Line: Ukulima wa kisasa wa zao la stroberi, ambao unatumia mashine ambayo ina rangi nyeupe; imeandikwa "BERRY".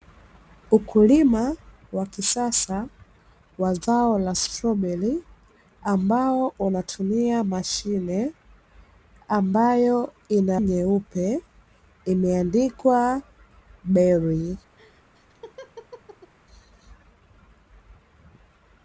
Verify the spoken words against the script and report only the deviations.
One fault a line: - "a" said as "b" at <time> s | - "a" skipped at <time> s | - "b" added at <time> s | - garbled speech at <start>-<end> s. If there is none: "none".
- "rangi" skipped at 10.6 s